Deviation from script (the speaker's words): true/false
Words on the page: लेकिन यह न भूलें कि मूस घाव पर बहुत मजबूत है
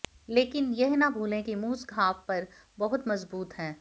false